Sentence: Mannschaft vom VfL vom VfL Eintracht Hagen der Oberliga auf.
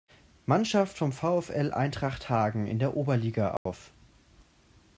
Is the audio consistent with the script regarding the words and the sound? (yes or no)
no